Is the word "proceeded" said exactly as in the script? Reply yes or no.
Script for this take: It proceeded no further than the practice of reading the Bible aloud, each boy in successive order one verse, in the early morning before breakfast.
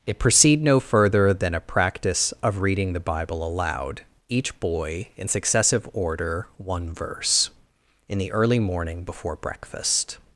no